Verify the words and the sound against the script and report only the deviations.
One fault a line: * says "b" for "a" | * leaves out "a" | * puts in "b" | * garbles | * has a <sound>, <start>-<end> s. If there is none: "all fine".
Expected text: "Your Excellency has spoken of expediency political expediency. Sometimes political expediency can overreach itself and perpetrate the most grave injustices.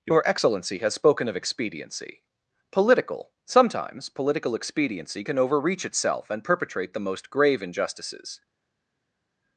* leaves out "expediency"